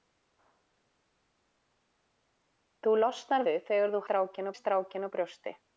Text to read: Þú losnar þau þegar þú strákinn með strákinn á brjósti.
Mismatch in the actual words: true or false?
false